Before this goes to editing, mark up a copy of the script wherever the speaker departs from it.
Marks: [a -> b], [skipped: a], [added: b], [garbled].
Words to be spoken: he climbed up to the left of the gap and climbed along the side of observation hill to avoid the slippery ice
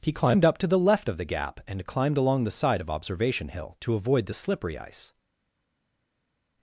he climbed up to the left of the gap and climbed along the side of observation hill to avoid the slippery ice